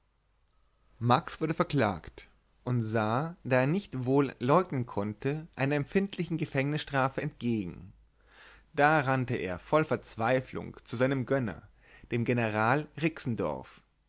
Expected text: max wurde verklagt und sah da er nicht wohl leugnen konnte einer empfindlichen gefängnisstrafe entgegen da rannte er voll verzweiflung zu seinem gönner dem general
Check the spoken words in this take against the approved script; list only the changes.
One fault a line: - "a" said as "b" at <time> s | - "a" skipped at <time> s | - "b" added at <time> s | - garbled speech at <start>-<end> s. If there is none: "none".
none